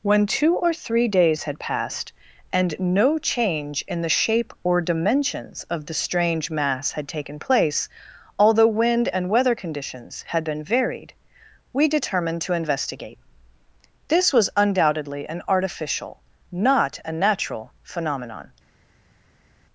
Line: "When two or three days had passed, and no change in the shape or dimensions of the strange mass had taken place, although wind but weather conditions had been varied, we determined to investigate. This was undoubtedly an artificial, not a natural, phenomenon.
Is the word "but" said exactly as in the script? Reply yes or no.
no